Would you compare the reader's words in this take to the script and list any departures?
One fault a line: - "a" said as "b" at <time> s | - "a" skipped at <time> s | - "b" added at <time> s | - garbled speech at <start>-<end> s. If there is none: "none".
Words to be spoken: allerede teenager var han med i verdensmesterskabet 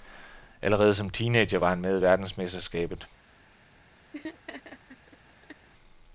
- "som" added at 0.9 s